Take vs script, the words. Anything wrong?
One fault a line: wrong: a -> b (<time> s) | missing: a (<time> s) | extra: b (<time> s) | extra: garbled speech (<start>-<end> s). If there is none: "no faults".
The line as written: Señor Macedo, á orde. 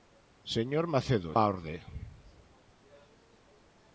no faults